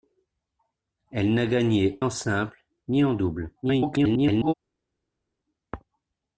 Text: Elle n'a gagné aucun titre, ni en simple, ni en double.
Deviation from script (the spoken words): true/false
true